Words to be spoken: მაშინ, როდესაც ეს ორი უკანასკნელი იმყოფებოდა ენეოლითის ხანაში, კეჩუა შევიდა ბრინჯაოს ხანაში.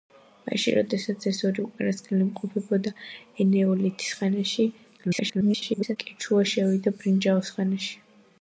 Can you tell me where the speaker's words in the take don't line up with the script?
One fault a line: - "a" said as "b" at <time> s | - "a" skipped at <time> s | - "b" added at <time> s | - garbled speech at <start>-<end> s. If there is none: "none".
- garbled speech at 5.0-6.0 s